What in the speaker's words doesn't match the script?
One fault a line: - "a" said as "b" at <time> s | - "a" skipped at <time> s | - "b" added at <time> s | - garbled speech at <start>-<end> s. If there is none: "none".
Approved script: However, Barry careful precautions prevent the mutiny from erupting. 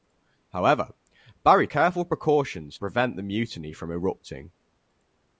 none